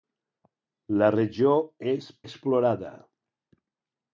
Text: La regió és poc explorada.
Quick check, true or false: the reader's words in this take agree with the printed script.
false